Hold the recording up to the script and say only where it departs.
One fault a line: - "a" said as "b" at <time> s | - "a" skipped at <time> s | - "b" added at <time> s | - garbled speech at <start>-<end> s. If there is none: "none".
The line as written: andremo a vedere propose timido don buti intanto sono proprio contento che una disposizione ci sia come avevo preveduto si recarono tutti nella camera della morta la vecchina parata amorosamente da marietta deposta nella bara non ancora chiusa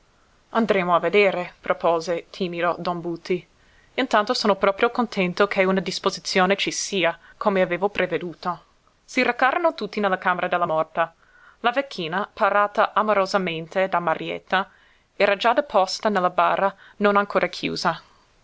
- "era già" added at 15.2 s